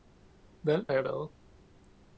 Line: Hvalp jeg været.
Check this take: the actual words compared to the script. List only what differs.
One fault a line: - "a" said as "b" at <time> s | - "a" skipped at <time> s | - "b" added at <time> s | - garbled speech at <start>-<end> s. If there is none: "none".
none